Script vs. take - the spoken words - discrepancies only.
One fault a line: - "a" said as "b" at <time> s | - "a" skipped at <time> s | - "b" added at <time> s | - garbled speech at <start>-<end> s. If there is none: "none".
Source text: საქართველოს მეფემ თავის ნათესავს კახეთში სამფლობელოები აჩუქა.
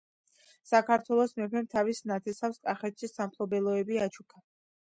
none